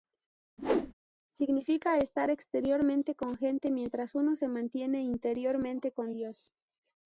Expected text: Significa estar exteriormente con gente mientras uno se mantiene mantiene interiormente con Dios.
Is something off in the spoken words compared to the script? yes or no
yes